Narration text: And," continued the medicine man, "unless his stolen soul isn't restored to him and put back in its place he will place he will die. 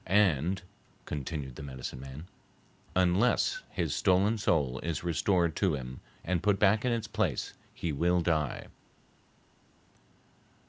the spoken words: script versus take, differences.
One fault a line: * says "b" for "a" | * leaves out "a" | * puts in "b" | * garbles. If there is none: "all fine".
* says "is" for "isn't"
* leaves out "place he will"